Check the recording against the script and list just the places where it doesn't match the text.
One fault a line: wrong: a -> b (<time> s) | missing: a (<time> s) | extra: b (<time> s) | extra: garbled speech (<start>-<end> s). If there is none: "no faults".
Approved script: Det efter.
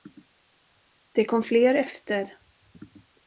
extra: kom fler (1.2 s)